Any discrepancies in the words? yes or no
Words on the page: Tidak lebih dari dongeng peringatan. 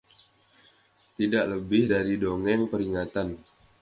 no